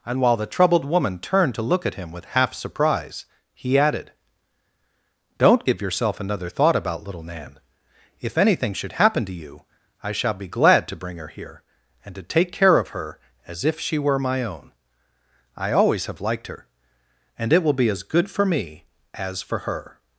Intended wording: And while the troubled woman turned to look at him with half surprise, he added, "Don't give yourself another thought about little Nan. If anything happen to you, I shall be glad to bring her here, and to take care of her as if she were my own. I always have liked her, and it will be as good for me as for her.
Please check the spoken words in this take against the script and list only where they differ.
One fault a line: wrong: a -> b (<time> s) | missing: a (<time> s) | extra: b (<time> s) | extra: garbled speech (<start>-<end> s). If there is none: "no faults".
extra: should (8.7 s)